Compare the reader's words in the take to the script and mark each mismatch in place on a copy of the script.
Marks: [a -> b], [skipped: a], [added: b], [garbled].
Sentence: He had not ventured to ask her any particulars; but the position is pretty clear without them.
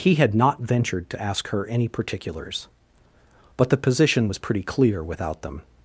He had not ventured to ask her any particulars; but the position [is -> was] pretty clear without them.